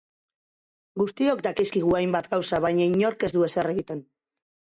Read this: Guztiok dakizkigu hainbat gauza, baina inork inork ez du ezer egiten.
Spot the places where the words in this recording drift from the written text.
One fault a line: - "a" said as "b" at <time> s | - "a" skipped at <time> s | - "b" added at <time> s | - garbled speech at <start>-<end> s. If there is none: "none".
- "inork" skipped at 3.3 s